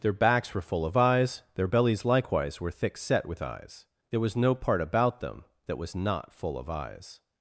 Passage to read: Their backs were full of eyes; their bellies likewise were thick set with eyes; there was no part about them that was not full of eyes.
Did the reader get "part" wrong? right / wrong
right